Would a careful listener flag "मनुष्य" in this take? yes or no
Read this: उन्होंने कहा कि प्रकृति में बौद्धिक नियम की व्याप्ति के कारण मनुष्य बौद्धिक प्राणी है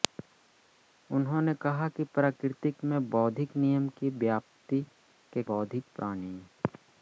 yes